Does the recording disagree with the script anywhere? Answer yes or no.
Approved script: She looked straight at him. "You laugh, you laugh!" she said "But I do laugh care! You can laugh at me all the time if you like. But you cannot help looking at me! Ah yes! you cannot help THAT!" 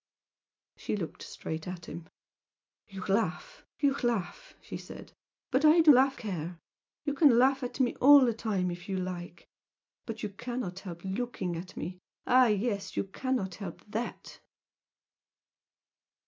no